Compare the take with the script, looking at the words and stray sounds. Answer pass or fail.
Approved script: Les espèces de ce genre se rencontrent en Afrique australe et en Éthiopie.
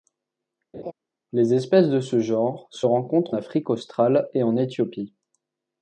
fail